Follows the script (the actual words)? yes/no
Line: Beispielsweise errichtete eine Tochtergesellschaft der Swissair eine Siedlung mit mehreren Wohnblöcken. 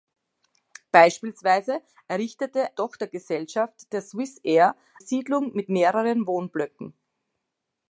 no